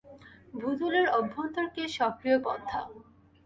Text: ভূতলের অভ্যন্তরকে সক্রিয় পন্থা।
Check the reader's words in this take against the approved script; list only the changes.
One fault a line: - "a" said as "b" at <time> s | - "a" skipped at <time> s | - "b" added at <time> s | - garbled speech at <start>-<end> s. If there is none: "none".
none